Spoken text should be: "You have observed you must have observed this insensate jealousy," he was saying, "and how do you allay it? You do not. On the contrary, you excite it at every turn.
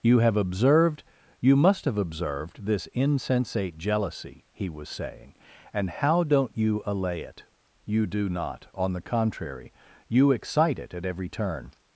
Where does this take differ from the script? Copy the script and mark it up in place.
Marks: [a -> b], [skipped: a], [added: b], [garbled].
"You have observed you must have observed this insensate jealousy," he was saying, "and how [do -> don't] you allay it? You do not. On the contrary, you excite it at every turn.